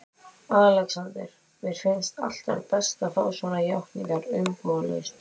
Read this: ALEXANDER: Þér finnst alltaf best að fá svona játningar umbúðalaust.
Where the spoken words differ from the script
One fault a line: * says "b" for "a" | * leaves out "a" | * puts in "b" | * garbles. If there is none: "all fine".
* says "Mér" for "Þér"